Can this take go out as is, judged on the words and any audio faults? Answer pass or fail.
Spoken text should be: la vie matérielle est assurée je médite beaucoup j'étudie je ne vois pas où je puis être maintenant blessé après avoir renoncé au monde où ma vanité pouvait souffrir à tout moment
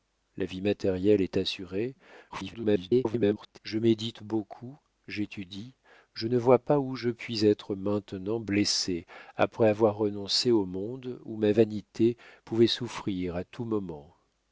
fail